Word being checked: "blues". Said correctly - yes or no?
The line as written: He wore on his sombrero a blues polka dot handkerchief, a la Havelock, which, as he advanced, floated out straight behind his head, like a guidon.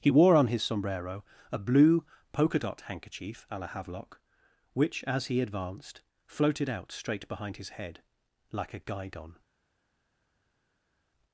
no